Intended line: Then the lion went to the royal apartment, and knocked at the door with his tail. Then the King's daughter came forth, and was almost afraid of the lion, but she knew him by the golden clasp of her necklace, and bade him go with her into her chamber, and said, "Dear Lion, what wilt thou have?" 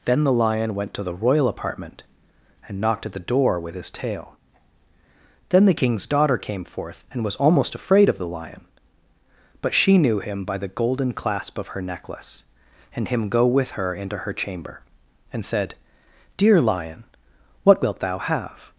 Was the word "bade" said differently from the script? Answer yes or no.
yes